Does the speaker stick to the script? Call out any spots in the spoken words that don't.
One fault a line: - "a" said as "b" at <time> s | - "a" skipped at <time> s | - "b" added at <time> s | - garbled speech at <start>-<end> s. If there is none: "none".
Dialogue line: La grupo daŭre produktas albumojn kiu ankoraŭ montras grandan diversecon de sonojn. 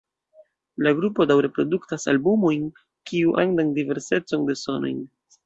- "ankoraŭ montras" skipped at 3.4 s